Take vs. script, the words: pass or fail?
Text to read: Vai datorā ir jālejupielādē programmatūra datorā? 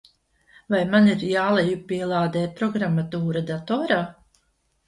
fail